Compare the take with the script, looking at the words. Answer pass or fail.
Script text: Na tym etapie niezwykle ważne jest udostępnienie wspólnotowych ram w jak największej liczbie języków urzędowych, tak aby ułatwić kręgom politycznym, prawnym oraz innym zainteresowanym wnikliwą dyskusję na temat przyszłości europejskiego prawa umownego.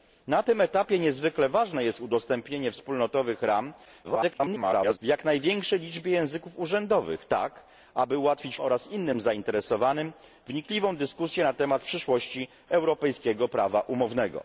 fail